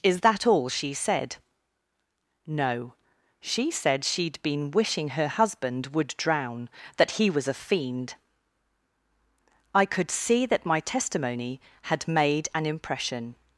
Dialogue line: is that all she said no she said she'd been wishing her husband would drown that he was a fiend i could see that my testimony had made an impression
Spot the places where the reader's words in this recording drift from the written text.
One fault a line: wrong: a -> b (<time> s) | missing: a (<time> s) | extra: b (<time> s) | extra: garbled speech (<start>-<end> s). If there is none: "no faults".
no faults